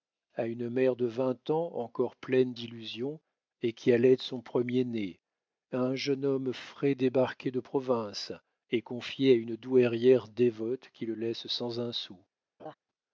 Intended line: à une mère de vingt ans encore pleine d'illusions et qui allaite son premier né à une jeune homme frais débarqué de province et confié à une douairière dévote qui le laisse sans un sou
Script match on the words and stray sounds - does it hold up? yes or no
no